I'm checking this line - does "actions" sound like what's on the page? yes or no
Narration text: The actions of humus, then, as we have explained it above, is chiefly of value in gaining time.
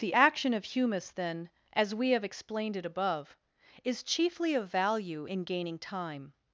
no